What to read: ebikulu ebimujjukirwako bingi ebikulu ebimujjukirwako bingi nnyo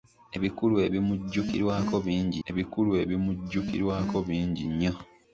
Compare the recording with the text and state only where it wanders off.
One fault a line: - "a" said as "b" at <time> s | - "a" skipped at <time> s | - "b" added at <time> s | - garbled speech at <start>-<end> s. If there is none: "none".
none